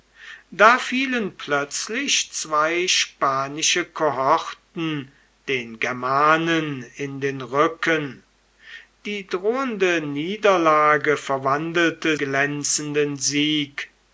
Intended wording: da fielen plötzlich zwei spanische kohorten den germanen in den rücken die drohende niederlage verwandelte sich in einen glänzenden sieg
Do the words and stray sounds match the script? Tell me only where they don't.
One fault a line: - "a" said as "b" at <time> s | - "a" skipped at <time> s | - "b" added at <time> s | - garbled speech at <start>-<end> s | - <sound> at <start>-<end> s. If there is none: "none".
- "sich in einen" skipped at 12.2 s